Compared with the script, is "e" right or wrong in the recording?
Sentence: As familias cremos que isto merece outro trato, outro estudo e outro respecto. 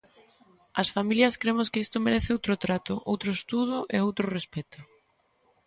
right